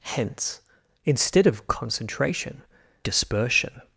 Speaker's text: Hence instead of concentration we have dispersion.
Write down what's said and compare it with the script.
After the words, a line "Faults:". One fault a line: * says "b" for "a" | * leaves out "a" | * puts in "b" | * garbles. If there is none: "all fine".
Hence instead of concentration dispersion.
Faults:
* leaves out "we have"